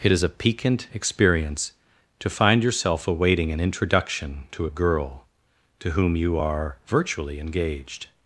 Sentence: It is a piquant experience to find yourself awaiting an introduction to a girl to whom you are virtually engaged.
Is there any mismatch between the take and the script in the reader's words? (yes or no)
no